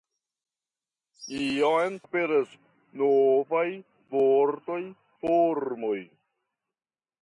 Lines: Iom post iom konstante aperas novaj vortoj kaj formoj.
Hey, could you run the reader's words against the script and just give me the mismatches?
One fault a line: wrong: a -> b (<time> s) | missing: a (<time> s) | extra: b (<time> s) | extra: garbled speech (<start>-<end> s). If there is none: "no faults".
missing: post iom konstante (2.0 s)
missing: kaj (4.8 s)